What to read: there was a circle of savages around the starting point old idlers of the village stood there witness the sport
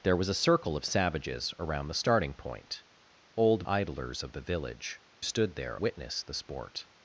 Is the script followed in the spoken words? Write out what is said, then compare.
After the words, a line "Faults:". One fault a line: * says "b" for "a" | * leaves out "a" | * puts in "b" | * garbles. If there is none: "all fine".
there was a circle of savages around the starting point old idlers of the village stood there witness the sport
Faults:
all fine